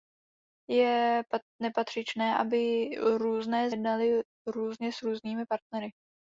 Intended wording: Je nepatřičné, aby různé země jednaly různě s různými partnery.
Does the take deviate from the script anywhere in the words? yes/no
yes